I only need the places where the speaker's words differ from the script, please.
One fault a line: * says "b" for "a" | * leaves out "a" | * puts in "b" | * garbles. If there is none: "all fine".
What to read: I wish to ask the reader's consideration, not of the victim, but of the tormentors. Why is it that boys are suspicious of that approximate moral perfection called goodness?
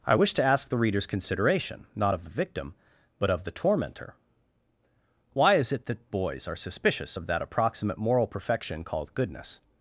* says "tormentor" for "tormentors"